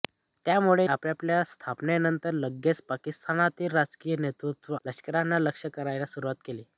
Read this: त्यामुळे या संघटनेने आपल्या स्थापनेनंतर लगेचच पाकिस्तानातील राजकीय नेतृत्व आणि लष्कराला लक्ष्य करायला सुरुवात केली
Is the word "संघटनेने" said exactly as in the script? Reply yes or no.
no